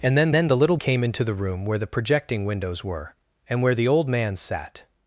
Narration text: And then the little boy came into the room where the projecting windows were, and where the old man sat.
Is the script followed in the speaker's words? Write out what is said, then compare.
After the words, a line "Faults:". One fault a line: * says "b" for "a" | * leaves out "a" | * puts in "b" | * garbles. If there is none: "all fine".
And then then the little came into the room where the projecting windows were, and where the old man sat.
Faults:
* puts in "then"
* leaves out "boy"